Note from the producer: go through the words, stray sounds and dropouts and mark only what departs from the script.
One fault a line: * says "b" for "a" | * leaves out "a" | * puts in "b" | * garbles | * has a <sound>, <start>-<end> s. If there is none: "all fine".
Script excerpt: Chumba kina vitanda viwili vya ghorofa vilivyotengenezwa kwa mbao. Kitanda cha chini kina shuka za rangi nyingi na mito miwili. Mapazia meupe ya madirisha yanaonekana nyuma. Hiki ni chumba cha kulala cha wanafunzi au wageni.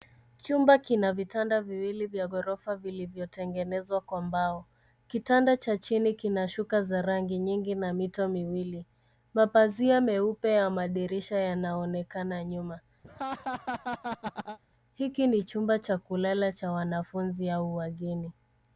* has a laugh, 13.0-14.6 s